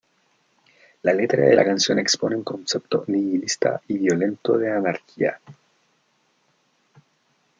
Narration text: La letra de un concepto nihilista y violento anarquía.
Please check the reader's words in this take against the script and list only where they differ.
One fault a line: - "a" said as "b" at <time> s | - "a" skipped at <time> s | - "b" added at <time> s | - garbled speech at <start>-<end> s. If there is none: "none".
- "la canción expone" added at 1.5 s
- "de" added at 4.6 s